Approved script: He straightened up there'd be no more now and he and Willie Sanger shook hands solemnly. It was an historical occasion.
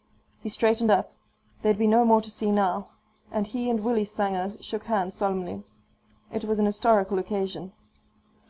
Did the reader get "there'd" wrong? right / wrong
right